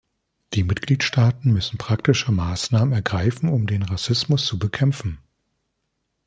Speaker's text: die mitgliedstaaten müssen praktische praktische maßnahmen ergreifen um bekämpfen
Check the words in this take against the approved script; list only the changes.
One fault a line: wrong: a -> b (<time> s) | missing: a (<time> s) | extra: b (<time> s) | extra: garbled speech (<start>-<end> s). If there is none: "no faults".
missing: praktische (2.3 s)
extra: den rassismus zu (3.7 s)